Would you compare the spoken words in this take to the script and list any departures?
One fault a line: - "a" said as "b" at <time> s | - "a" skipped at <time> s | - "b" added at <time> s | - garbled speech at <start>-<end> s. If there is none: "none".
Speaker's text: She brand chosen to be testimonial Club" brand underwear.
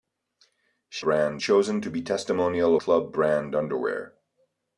none